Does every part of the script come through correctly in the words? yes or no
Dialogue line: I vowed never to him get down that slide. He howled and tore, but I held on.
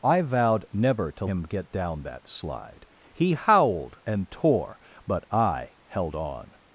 yes